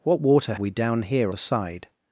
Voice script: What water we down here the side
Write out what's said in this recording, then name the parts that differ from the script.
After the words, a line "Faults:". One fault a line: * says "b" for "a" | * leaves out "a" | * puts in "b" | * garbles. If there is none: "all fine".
What water we down here the side
Faults:
all fine